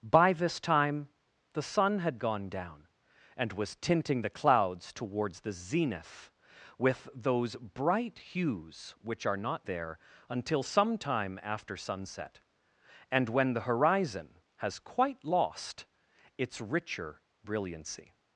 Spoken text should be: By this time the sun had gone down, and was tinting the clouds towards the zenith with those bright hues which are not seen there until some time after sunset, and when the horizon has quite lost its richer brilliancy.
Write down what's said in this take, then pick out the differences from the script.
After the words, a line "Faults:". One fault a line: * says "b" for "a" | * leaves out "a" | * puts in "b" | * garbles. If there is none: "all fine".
By this time the sun had gone down, and was tinting the clouds towards the zenith with those bright hues which are not there until some time after sunset, and when the horizon has quite lost its richer brilliancy.
Faults:
* leaves out "seen"